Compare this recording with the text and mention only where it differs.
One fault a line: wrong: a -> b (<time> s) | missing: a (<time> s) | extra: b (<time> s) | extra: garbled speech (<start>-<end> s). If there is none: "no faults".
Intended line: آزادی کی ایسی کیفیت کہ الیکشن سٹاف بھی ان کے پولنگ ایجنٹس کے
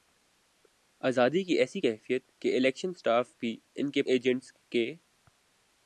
missing: پولنگ (4.0 s)